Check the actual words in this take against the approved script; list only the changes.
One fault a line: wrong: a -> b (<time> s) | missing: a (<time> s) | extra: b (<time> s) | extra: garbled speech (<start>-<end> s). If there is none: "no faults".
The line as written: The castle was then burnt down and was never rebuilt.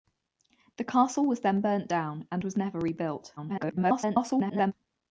extra: garbled speech (3.4-4.7 s)